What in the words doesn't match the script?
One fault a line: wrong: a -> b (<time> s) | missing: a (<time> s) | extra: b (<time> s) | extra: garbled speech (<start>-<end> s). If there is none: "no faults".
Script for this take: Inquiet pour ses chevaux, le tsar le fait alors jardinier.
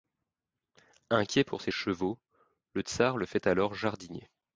no faults